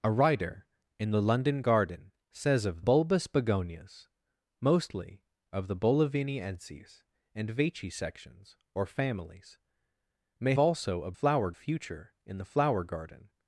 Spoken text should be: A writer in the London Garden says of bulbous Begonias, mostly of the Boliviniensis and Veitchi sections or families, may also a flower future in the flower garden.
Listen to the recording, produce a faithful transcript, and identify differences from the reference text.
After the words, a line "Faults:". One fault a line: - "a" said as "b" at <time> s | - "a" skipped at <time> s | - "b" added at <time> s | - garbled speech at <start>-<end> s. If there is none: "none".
A writer in the London Garden says of bulbous Begonias, mostly of the Boliviniensis and Veitchi sections or families, may also a flower future in the flower garden.
Faults:
none